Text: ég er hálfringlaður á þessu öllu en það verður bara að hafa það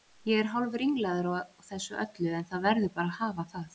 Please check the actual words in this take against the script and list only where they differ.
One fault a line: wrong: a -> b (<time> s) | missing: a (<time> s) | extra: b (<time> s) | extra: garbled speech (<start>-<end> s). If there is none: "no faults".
no faults